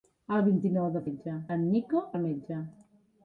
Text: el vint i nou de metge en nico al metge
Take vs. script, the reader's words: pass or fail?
pass